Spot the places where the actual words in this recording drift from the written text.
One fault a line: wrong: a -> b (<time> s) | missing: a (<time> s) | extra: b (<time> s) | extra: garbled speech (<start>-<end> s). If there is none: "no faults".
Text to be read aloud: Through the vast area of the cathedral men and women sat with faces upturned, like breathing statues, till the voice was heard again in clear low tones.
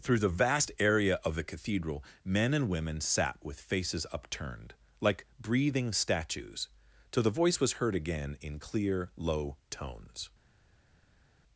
no faults